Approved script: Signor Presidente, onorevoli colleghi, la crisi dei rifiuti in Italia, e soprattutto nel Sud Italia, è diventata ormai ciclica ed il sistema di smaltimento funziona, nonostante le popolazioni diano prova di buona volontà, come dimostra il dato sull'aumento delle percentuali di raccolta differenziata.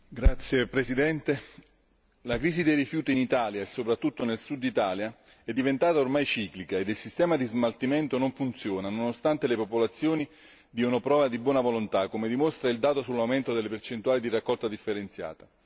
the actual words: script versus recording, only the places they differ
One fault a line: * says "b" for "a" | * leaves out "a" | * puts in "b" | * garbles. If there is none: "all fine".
* puts in "non"